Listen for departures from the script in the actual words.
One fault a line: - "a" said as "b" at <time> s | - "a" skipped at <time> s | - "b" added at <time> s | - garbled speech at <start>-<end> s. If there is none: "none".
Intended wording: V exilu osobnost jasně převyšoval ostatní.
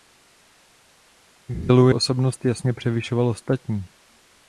none